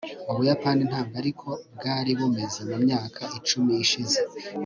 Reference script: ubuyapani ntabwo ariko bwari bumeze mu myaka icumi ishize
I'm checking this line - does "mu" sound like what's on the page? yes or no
yes